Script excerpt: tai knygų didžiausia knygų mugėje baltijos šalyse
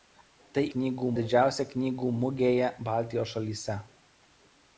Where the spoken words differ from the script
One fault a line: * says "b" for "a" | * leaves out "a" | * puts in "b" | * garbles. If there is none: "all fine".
all fine